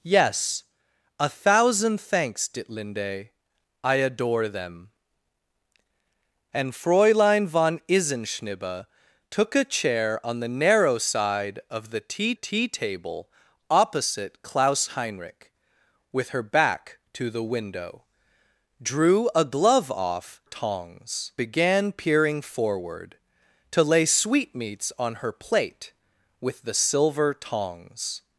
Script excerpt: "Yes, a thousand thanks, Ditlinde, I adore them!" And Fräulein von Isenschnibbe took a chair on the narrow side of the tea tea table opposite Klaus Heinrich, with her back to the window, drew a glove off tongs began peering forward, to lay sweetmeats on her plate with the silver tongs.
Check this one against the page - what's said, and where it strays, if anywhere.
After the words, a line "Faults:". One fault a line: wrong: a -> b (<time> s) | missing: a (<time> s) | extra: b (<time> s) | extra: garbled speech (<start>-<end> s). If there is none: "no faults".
"Yes, a thousand thanks, Ditlinde, I adore them!" And Fräulein von Isenschnibbe took a chair on the narrow side of the tea tea table opposite Klaus Heinrich, with her back to the window, drew a glove off tongs began peering forward, to lay sweetmeats on her plate with the silver tongs.
Faults:
no faults